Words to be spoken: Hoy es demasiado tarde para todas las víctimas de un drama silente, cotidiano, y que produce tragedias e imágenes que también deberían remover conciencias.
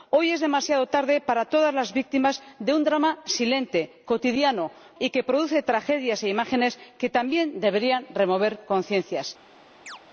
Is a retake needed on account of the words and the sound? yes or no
yes